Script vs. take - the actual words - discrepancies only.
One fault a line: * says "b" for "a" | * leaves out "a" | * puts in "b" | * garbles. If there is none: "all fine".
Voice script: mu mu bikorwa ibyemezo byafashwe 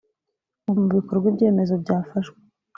all fine